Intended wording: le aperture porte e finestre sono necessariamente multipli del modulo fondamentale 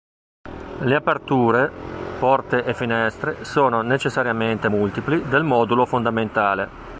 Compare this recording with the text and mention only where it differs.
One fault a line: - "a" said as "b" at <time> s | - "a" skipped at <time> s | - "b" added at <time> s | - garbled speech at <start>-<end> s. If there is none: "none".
none